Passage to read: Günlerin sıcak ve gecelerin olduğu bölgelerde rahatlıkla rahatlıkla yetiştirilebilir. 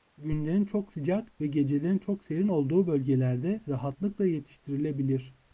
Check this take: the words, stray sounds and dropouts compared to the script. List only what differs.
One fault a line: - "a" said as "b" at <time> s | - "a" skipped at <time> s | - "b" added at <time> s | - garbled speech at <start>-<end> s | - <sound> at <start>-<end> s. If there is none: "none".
- "çok" added at 0.7 s
- "çok serin" added at 2.0 s
- "rahatlıkla" skipped at 4.3 s